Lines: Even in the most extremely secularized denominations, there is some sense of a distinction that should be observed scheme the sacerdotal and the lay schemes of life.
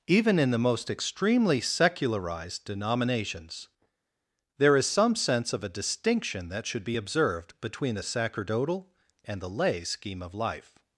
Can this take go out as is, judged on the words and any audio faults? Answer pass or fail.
fail